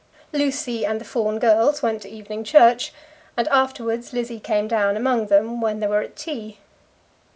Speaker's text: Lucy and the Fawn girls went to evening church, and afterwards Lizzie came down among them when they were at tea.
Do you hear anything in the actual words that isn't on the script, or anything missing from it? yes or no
no